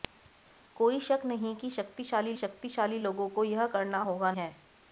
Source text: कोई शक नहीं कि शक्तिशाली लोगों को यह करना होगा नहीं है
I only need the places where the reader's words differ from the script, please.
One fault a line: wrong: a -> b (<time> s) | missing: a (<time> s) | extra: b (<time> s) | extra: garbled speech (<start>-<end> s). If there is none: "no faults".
extra: शक्तिशाली (2.3 s)
missing: नहीं (4.3 s)